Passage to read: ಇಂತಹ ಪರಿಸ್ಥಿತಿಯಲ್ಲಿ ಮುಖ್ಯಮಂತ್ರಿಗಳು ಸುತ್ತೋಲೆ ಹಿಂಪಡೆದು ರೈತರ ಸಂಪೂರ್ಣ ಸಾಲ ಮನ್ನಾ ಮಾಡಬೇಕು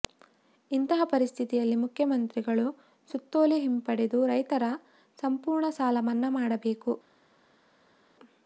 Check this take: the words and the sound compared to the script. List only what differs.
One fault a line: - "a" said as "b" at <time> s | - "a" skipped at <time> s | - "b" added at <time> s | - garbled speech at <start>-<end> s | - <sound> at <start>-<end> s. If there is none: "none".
none